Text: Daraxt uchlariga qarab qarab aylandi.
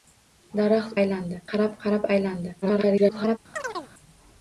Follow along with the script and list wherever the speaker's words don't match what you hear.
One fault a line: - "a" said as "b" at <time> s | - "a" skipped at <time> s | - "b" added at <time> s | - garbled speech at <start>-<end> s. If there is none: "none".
- "uchlariga" said as "aylandi" at 1.0 s
- garbled speech at 2.6-3.4 s